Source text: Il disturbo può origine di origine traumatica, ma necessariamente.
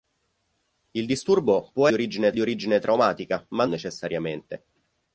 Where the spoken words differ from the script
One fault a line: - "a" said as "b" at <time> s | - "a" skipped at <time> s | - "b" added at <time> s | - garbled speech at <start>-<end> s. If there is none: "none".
none